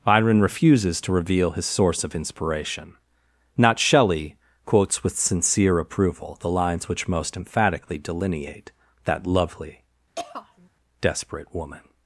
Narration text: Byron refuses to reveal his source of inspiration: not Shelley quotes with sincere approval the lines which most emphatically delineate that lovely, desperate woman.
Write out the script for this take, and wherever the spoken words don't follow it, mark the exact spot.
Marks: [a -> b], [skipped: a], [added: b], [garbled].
Byron refuses to reveal his source of inspiration: not Shelley quotes with sincere approval the lines which most emphatically delineate that lovely, desperate woman.